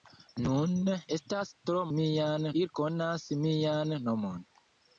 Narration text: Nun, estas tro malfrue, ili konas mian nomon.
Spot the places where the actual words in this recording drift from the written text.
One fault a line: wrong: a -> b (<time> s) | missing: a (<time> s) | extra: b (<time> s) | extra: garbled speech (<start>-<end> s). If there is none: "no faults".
wrong: malfrue -> mian (2.0 s)